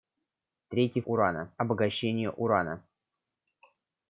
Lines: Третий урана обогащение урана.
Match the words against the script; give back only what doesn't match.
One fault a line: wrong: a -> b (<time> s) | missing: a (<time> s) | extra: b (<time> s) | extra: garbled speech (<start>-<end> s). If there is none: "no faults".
no faults